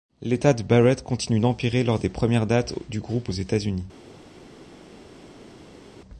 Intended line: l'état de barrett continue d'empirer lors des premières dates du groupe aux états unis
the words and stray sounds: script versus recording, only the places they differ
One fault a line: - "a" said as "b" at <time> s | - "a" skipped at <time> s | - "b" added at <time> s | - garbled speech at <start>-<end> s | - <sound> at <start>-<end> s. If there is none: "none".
none